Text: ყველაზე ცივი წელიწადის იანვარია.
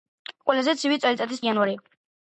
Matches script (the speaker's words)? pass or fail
pass